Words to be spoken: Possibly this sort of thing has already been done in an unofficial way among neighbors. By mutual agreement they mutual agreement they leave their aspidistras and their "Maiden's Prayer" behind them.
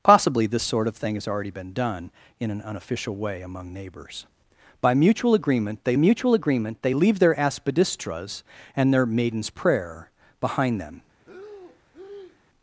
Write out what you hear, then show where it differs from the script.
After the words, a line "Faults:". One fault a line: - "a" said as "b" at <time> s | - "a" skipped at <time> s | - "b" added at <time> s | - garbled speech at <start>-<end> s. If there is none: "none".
Possibly this sort of thing has already been done in an unofficial way among neighbors. By mutual agreement they mutual agreement they leave their aspidistras and their "Maiden's Prayer" behind them.
Faults:
none